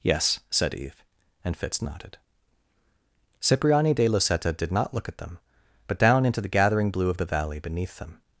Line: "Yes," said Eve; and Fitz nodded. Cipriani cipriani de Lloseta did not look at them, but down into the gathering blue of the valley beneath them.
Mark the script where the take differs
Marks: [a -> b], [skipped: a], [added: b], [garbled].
"Yes," said Eve; and Fitz nodded. Cipriani [skipped: cipriani] de Lloseta did not look at them, but down into the gathering blue of the valley beneath them.